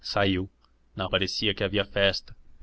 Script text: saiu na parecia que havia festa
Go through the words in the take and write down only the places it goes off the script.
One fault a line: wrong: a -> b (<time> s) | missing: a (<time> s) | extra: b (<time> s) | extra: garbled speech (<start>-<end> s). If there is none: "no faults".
no faults